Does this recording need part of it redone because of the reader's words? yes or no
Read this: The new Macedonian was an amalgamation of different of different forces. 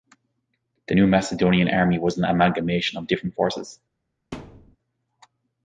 yes